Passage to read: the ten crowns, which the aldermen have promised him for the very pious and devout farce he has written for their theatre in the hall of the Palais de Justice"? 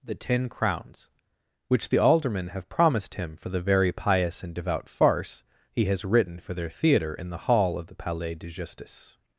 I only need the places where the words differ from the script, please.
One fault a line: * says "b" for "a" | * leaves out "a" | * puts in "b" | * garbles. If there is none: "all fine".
all fine